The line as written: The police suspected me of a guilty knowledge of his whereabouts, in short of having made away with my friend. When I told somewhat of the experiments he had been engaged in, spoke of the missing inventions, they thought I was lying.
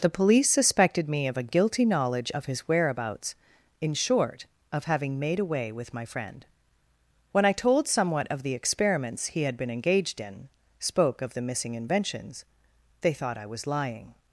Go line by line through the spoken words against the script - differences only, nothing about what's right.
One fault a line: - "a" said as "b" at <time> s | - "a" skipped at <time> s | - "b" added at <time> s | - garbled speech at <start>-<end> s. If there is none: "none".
none